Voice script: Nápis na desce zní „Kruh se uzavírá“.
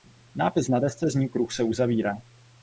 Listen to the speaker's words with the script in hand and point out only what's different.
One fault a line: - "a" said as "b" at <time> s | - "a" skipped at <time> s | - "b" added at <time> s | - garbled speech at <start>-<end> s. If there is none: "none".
none